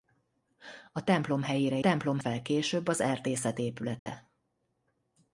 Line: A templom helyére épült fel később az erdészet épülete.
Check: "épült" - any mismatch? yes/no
yes